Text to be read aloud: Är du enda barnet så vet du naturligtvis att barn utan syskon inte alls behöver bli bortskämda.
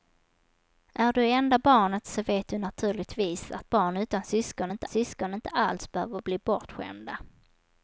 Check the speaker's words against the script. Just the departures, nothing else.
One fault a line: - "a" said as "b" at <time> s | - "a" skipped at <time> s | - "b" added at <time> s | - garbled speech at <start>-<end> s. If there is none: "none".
- "syskon inte" added at 4.9 s